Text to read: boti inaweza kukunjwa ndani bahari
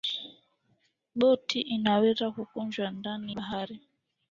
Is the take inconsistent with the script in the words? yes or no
no